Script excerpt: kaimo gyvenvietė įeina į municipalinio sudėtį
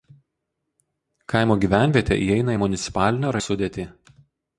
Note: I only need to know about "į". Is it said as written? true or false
true